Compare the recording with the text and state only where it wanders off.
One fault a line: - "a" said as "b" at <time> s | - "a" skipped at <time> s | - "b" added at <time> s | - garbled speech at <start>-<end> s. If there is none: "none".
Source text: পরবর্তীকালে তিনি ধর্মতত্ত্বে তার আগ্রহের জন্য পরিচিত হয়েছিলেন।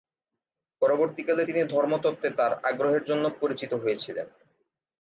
none